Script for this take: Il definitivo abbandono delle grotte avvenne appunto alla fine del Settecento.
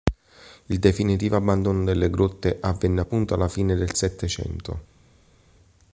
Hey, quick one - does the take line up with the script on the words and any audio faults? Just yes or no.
yes